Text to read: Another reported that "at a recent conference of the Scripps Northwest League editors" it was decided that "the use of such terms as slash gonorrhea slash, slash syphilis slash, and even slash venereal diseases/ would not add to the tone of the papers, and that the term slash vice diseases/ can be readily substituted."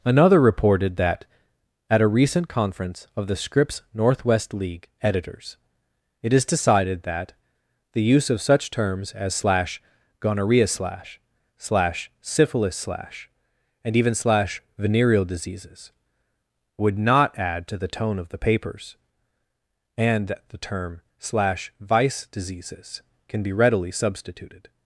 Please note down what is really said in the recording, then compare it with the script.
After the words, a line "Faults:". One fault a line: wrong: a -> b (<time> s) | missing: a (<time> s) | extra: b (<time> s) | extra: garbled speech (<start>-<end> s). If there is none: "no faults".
Another reported that "at a recent conference of the Scripps Northwest League editors" it is decided that "the use of such terms as slash gonorrhea slash, slash syphilis slash, and even slash venereal diseases/ would not add to the tone of the papers, and that the term slash vice diseases/ can be readily substituted."
Faults:
wrong: was -> is (6.3 s)